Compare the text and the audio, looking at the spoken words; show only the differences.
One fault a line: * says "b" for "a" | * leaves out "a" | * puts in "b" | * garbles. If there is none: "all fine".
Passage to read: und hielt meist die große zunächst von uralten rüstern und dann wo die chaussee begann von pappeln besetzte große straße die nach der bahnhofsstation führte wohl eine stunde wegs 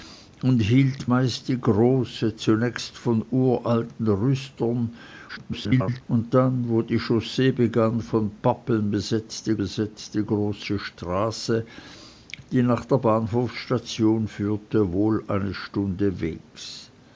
* garbles
* puts in "besetzte"